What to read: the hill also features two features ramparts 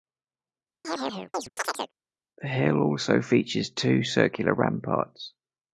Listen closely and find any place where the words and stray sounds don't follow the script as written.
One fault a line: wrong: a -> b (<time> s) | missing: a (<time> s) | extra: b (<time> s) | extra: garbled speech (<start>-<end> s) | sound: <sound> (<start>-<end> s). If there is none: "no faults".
sound: chirp (0.8-1.9 s)
wrong: features -> circular (4.0 s)